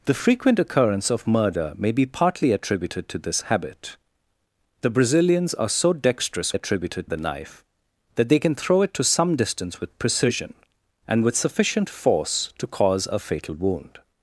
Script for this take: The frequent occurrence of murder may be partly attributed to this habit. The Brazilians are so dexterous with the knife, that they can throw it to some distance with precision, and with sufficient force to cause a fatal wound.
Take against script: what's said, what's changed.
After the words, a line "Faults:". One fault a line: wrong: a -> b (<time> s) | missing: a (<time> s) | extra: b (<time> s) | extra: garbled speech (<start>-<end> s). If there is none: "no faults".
The frequent occurrence of murder may be partly attributed to this habit. The Brazilians are so dexterous attributed the knife, that they can throw it to some distance with precision, and with sufficient force to cause a fatal wound.
Faults:
wrong: with -> attributed (6.5 s)